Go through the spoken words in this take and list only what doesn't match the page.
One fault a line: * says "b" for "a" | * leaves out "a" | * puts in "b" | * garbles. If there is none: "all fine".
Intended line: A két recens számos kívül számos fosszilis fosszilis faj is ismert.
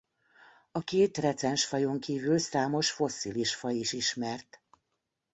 * says "fajon" for "számos"
* leaves out "fosszilis"